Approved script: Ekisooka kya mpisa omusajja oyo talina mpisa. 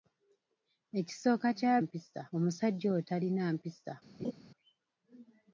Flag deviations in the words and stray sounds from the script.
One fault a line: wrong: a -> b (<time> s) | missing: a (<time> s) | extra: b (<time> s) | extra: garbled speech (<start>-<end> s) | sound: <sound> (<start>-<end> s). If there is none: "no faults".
sound: laugh (4.2-4.3 s)